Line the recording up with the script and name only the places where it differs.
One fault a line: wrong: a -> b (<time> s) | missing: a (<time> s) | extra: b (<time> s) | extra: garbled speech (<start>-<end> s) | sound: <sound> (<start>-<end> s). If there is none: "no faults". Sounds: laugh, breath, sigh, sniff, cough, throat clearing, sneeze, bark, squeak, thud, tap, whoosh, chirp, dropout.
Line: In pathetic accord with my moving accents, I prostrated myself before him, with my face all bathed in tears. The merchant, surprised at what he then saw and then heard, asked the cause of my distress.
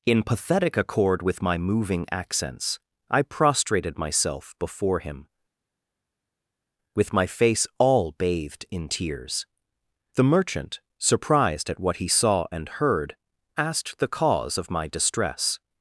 missing: then (12.1 s)
missing: then (12.7 s)